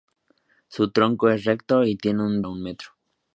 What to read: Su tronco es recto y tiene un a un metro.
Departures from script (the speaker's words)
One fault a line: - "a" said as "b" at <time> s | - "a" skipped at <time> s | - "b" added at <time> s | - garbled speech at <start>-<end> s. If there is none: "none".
none